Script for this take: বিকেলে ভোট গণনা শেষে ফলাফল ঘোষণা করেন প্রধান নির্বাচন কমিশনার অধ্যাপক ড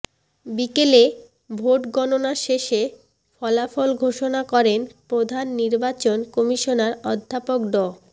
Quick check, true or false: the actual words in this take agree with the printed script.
true